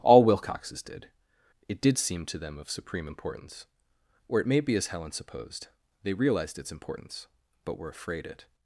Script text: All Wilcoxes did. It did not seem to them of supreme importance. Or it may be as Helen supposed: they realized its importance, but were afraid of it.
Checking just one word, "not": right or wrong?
wrong